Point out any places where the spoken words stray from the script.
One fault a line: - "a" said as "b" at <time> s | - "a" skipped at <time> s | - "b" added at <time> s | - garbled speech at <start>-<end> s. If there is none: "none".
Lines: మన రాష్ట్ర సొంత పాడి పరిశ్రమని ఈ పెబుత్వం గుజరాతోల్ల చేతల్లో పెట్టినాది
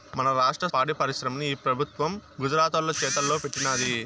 - "సొంత" skipped at 0.7 s